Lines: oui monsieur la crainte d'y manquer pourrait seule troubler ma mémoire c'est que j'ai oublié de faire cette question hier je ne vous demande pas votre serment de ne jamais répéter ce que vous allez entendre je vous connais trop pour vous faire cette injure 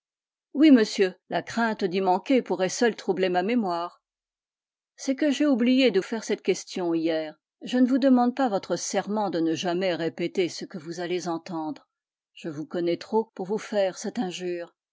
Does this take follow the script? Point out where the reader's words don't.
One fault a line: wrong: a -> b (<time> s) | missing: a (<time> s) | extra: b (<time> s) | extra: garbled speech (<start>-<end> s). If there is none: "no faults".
no faults